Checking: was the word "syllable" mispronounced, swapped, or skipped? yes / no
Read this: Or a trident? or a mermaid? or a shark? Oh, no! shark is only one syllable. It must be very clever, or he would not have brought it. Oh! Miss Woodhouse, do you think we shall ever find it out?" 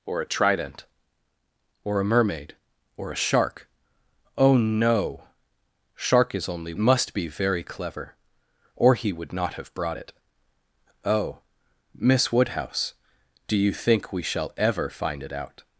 yes